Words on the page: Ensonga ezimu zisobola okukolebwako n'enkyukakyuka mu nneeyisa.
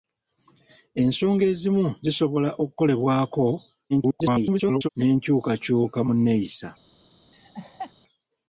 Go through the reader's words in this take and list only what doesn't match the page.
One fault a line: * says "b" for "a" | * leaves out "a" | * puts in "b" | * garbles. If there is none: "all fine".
* garbles